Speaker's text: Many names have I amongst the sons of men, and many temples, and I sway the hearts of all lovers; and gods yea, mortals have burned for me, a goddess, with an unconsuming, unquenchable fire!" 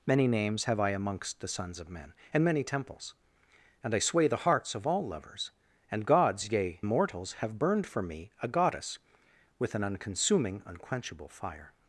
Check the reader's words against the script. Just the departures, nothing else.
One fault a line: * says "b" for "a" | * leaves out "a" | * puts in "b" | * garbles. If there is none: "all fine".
all fine